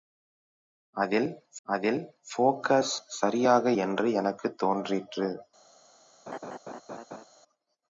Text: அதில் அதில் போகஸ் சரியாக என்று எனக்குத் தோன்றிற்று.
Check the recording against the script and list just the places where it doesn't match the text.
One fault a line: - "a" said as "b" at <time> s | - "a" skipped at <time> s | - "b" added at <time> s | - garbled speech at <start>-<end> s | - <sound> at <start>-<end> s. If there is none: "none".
- laugh at 6.3-7.3 s